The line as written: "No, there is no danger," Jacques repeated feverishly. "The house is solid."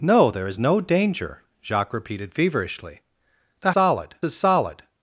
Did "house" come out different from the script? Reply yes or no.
yes